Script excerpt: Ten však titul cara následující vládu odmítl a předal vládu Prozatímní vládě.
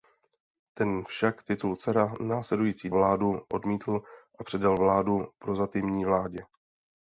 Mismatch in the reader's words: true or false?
false